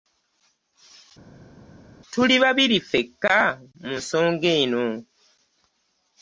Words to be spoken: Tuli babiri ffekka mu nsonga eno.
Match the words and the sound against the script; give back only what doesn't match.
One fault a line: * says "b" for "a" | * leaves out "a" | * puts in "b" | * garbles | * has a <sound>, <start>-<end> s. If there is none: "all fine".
all fine